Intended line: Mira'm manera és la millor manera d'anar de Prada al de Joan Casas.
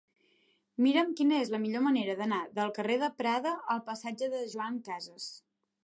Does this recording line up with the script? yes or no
no